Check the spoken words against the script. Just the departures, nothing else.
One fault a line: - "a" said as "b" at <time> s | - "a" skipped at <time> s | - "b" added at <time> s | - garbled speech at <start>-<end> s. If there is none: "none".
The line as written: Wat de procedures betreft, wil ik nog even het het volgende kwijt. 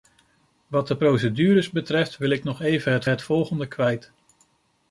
none